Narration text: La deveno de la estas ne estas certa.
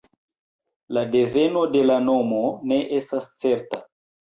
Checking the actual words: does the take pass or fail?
fail